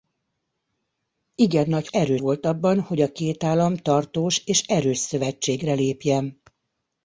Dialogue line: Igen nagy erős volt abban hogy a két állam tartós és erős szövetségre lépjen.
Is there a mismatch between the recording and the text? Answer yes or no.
no